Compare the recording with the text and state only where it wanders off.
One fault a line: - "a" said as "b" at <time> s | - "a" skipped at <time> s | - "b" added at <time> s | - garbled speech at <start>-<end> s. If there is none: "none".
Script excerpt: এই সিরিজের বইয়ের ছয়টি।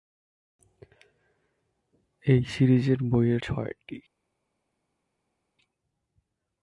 none